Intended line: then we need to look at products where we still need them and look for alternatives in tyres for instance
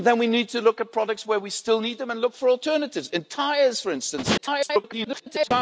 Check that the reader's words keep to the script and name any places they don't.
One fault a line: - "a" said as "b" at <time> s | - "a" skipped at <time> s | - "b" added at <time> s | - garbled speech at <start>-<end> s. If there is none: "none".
- garbled speech at 4.4-5.5 s